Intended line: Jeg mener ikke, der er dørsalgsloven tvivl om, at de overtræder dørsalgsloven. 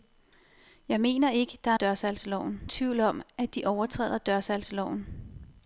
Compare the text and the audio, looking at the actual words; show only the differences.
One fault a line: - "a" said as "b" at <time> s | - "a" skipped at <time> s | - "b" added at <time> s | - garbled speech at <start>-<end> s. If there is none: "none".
none